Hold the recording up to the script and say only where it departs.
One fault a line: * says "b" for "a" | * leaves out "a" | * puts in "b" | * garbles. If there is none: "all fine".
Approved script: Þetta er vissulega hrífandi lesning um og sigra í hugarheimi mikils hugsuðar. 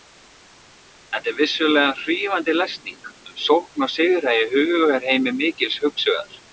* puts in "sókn"